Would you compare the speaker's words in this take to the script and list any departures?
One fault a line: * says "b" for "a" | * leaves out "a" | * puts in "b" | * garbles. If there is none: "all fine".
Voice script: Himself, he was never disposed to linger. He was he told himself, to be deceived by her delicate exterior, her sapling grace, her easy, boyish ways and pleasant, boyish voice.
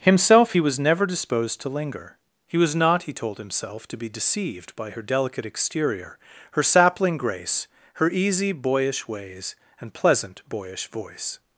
* puts in "not"